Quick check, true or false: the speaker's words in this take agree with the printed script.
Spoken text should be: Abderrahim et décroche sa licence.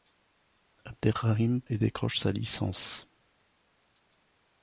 true